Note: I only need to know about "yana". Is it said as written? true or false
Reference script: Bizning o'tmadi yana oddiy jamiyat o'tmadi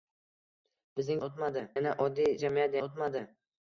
true